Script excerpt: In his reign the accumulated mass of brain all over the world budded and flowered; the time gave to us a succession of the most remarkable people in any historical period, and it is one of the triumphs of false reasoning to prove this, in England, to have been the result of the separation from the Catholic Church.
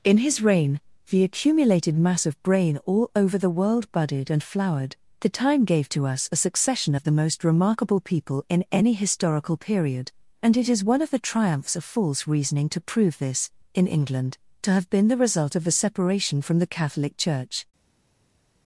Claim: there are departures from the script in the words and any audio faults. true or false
true